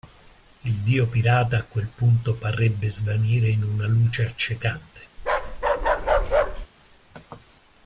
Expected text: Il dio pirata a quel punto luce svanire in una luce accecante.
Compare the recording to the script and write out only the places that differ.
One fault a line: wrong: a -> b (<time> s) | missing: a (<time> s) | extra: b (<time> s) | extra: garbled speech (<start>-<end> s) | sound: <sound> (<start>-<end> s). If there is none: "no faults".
wrong: luce -> parrebbe (2.3 s)
sound: bark (5.2-6.7 s)